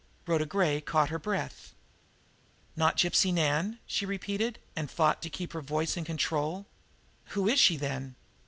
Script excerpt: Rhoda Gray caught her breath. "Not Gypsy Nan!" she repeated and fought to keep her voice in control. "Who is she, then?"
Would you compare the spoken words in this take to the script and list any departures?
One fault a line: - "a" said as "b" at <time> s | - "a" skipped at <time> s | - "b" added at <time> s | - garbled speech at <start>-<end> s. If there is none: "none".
none